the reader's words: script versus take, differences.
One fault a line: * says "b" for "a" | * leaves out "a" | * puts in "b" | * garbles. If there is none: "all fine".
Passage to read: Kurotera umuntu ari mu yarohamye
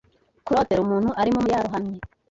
all fine